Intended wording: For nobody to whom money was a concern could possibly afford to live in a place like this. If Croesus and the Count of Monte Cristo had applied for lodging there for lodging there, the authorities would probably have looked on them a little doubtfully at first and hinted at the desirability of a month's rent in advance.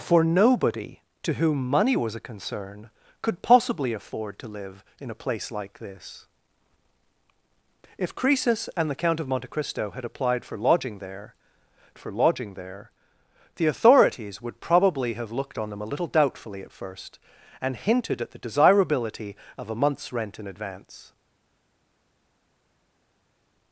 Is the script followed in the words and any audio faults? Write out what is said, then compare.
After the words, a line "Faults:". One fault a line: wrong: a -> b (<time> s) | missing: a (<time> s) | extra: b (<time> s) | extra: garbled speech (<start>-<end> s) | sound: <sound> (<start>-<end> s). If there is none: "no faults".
For nobody to whom money was a concern could possibly afford to live in a place like this. If Croesus and the Count of Monte Cristo had applied for lodging there for lodging there, the authorities would probably have looked on them a little doubtfully at first and hinted at the desirability of a month's rent in advance.
Faults:
no faults